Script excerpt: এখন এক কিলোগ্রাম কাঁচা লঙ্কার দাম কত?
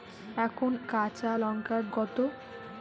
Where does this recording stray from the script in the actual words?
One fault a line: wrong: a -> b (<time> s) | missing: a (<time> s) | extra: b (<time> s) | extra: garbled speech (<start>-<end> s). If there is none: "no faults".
missing: এক কিলোগ্রাম (0.7 s)
missing: দাম (1.8 s)